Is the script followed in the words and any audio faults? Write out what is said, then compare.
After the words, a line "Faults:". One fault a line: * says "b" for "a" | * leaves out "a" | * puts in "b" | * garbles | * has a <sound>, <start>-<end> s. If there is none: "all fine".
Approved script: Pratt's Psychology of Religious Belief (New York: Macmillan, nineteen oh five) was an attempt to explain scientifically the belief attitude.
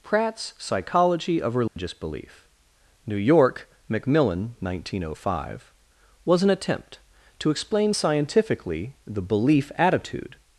Pratt's Psychology of Religious Belief (New York: Macmillan, nineteen oh five) was an attempt to explain scientifically the belief attitude.
Faults:
* has a dropout, 1.7-1.8 s